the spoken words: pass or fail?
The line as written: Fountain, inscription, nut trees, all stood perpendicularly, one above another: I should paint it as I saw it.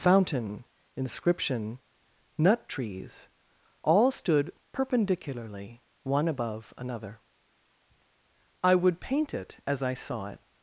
fail